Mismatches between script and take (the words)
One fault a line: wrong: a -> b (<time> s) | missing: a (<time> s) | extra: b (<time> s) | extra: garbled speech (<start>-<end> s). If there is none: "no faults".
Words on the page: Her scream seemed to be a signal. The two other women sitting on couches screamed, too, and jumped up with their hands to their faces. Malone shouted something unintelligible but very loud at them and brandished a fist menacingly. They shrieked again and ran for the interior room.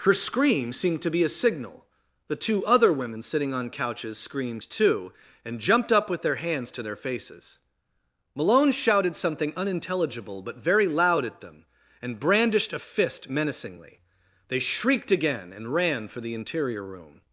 no faults